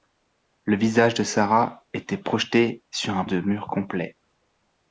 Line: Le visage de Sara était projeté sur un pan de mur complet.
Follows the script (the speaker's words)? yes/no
no